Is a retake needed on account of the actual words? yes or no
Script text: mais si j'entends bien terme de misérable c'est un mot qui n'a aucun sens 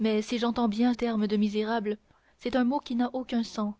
no